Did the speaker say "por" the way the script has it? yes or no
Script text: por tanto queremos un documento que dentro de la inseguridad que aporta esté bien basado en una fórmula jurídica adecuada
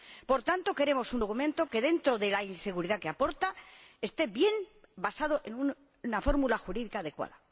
yes